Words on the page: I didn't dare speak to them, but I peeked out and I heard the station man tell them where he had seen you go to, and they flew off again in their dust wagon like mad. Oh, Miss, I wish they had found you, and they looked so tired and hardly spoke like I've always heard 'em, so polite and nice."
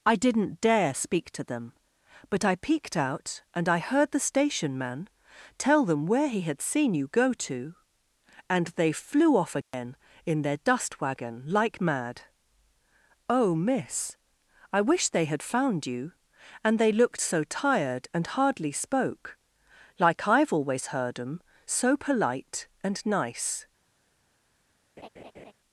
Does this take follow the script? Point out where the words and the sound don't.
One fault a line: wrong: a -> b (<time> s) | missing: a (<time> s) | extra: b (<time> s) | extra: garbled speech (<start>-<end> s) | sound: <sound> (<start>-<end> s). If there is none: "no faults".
sound: dropout (9.6-9.7 s)
sound: laugh (25.0-25.5 s)